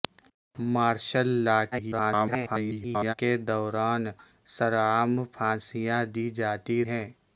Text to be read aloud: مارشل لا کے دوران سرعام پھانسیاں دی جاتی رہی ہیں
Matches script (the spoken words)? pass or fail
fail